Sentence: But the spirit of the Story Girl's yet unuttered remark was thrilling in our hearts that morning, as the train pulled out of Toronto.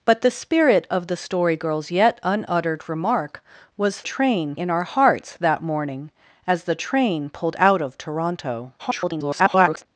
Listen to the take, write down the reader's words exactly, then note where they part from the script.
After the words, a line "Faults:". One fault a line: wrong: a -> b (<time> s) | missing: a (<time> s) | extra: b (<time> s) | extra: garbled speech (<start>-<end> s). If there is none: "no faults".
But the spirit of the Story Girl's yet unuttered remark was train in our hearts that morning, as the train pulled out of Toronto. [garbled]
Faults:
wrong: thrilling -> train (4.0 s)
extra: garbled speech (8.8-9.9 s)